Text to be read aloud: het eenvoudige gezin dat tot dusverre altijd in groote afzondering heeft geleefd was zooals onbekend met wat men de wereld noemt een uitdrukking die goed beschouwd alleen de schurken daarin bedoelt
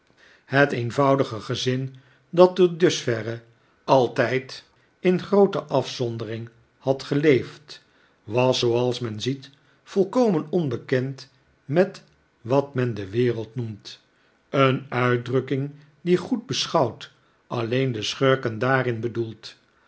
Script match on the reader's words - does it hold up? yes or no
no